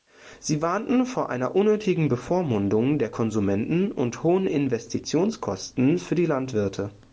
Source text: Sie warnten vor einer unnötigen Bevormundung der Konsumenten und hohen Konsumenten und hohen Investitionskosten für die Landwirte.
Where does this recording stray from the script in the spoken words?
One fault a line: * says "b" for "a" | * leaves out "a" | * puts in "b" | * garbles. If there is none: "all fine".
* leaves out "Konsumenten und hohen"